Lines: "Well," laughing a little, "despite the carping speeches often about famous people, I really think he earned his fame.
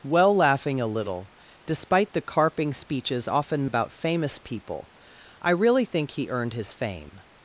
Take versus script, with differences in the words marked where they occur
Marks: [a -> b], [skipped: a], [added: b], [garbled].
"Well," laughing a little, "despite the carping speeches often about famous people, I really think he earned his fame.